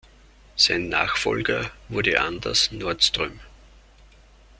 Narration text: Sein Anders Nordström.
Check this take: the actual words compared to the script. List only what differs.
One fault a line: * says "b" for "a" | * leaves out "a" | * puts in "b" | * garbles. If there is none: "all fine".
* puts in "Nachfolger wurde"